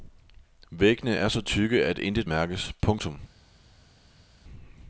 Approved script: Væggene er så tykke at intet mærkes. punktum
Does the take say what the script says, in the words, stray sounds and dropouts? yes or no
yes